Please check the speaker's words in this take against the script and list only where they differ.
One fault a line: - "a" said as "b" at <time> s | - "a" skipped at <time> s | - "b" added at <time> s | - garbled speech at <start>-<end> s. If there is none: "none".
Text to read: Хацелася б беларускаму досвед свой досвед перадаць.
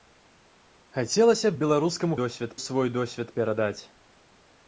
none